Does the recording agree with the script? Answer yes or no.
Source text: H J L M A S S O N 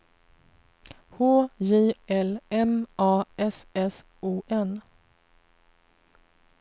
yes